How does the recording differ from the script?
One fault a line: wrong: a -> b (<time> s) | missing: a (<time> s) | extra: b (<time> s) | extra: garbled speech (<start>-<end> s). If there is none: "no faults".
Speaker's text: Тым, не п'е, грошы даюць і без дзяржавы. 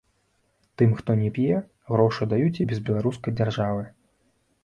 extra: хто (1.0 s)
extra: беларускай (2.9 s)